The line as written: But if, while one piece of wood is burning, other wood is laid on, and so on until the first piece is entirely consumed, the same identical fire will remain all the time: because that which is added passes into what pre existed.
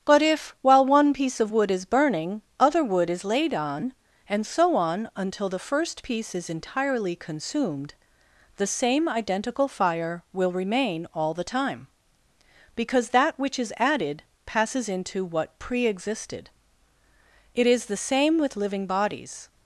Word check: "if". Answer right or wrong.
right